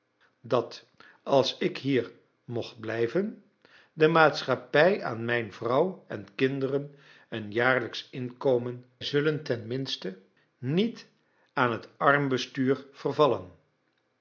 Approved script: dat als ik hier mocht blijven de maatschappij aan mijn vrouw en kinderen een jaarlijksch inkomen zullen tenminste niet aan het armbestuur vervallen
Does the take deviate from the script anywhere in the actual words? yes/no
no